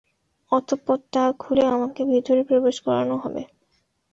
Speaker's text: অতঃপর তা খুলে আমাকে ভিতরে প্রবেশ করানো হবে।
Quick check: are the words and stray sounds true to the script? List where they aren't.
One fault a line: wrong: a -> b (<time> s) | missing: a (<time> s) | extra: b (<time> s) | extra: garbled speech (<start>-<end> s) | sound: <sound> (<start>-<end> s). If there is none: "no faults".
no faults